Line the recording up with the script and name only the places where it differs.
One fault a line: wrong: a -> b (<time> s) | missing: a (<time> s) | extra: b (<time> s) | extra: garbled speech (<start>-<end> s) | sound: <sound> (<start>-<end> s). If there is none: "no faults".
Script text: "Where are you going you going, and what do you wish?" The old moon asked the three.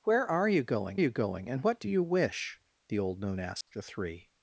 sound: dropout (3.6-3.7 s)